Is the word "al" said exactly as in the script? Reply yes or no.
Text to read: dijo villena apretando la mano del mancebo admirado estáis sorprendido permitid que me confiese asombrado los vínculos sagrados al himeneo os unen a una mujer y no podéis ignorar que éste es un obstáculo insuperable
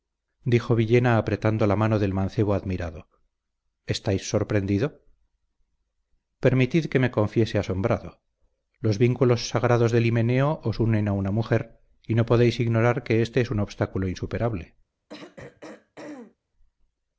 no